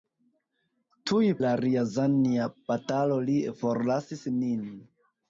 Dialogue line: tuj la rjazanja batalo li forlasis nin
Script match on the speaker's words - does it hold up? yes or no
yes